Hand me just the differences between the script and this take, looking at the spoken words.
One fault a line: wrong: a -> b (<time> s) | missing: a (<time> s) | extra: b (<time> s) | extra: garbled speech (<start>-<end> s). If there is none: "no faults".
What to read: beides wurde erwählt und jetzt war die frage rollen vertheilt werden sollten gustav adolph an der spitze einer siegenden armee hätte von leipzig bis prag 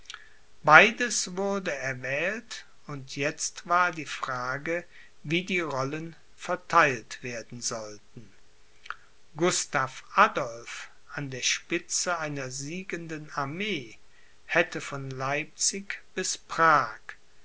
extra: wie die (5.2 s)